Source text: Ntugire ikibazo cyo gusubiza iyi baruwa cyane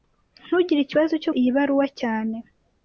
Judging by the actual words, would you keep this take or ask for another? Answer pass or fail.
fail